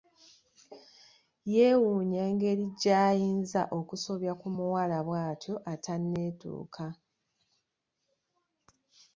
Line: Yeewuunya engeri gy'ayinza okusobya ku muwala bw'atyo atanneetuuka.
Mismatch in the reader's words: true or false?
false